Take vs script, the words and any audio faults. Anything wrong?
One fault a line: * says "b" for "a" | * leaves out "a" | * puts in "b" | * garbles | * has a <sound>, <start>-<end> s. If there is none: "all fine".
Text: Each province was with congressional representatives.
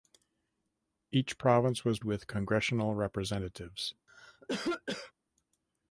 * has a cough, 4.1-5.1 s